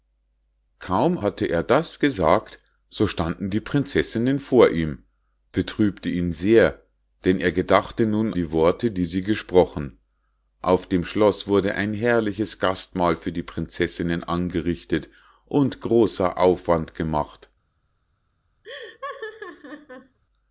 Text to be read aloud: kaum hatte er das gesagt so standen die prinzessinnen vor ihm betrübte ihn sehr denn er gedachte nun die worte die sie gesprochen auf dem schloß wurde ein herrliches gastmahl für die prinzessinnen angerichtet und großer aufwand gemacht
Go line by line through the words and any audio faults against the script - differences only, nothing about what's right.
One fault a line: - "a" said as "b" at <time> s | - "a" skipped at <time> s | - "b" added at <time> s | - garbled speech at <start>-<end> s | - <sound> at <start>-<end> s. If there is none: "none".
- laugh at 18.6-20.2 s